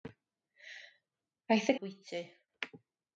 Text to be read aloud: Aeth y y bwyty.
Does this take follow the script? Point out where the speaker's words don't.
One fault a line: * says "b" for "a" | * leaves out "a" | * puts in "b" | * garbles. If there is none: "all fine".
all fine